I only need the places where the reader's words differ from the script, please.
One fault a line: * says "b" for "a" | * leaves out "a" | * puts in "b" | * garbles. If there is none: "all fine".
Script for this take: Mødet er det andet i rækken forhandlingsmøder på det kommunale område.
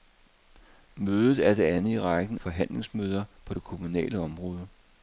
all fine